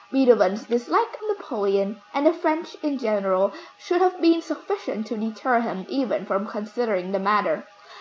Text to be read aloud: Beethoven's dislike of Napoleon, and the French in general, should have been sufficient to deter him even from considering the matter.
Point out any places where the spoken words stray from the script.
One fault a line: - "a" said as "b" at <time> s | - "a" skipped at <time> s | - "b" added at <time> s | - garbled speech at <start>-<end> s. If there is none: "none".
- "of" skipped at 1.1 s